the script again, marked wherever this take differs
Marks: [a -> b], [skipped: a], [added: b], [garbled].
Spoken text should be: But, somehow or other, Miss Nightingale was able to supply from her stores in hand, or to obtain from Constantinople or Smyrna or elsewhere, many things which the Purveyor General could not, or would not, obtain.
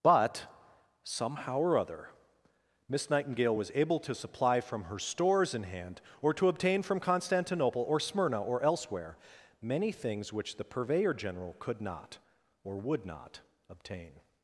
But, somehow or other, Miss Nightingale was able to supply from her stores in hand, or to obtain from Constantinople or Smyrna or elsewhere, many things which the Purveyor General could not, or would not, obtain.